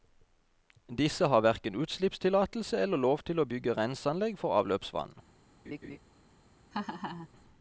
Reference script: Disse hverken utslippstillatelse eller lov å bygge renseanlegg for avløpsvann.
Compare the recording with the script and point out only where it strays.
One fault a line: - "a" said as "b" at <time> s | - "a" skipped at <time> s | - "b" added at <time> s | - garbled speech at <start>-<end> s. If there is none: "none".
- "har" added at 1.3 s
- "til" added at 3.3 s